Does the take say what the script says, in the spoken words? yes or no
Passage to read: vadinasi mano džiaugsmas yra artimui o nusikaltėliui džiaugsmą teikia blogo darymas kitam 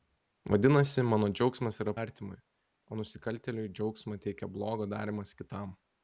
yes